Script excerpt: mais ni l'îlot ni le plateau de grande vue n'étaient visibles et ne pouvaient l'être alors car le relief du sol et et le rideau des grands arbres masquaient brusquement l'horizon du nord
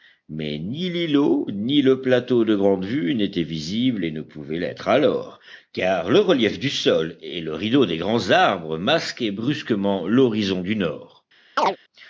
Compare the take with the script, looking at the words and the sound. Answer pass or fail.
fail